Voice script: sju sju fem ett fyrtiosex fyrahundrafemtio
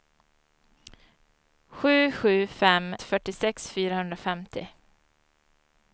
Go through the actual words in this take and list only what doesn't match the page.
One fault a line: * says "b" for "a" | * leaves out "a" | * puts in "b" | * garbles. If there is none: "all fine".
* leaves out "ett"